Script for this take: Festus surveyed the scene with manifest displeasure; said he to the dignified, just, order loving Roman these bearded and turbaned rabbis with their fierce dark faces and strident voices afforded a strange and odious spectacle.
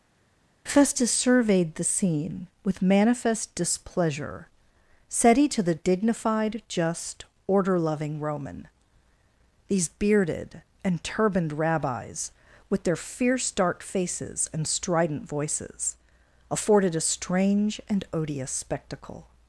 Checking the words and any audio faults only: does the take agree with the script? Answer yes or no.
yes